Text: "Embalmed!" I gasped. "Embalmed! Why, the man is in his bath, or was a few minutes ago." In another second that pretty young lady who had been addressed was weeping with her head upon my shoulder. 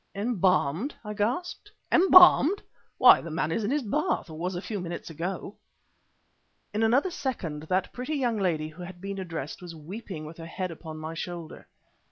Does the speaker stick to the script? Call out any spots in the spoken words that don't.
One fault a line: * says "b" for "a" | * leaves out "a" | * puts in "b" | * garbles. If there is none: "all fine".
all fine